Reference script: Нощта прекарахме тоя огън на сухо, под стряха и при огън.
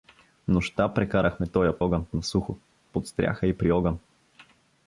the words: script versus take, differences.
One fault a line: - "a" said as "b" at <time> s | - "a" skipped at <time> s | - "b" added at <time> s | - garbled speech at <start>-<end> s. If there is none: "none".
none